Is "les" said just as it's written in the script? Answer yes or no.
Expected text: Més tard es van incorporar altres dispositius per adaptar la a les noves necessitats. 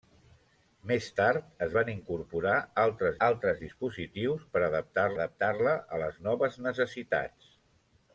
yes